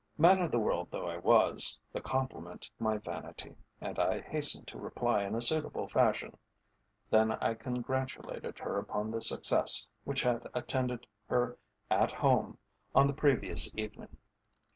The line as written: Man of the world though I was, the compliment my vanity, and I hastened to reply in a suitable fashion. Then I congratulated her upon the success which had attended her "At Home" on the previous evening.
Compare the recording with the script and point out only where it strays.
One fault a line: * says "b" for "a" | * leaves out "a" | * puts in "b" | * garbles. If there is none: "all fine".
all fine